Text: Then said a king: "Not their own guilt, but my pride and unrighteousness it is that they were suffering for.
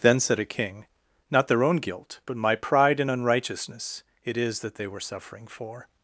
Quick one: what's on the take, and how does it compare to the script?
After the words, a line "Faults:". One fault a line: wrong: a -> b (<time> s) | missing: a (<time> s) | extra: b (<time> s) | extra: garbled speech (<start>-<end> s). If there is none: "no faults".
Then said a king: "Not their own guilt, but my pride and unrighteousness it is that they were suffering for.
Faults:
no faults